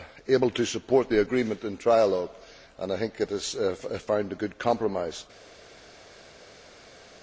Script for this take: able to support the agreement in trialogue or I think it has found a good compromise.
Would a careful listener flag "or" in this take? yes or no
yes